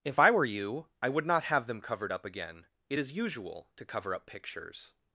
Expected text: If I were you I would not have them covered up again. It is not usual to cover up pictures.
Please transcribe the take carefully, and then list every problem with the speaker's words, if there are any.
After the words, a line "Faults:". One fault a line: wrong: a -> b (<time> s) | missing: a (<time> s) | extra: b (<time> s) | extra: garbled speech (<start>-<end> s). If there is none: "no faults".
If I were you I would not have them covered up again. It is usual to cover up pictures.
Faults:
missing: not (3.1 s)